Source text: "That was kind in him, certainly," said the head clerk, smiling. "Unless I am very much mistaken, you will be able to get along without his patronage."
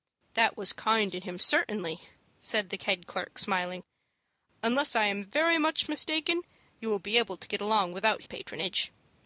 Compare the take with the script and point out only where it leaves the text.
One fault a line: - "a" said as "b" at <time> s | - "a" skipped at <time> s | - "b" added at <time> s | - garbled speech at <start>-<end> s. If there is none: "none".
- "his" skipped at 8.2 s